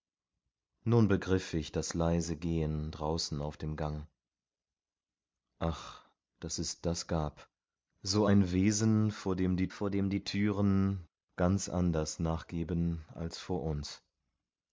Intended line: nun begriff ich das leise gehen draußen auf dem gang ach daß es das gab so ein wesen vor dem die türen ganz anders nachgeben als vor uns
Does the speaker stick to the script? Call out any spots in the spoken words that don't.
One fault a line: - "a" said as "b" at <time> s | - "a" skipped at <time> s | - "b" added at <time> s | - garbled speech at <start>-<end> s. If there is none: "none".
- "vor dem die" added at 9.7 s